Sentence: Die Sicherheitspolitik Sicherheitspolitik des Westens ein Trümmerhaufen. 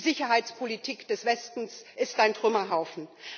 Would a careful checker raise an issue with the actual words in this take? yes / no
yes